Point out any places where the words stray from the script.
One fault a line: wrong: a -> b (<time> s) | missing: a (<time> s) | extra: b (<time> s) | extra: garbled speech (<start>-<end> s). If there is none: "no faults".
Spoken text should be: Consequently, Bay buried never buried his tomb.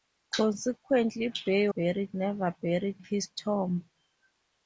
no faults